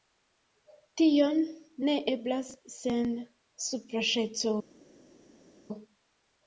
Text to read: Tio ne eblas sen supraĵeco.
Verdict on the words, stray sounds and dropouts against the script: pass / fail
pass